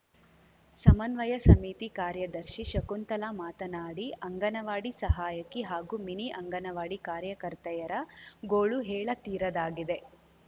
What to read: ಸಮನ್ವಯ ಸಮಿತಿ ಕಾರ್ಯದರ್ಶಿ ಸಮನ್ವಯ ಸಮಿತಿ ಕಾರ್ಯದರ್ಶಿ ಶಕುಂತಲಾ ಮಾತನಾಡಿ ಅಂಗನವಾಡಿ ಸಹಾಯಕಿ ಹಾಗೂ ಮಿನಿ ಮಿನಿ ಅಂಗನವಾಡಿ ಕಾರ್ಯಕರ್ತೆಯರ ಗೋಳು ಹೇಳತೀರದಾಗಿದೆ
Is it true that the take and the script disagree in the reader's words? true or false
true